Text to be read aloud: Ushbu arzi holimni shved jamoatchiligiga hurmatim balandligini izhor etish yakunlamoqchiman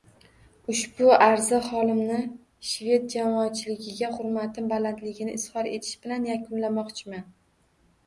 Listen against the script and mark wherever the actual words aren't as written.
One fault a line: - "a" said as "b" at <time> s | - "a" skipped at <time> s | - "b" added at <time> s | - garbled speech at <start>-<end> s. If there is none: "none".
- "bilan" added at 6.1 s